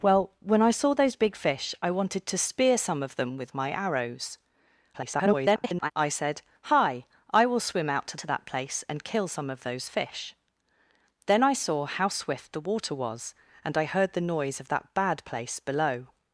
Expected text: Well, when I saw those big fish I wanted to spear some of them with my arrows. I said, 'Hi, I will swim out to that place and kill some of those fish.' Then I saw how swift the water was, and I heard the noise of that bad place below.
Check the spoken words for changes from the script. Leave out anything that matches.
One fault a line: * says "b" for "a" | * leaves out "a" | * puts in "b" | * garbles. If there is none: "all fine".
* garbles
* puts in "to"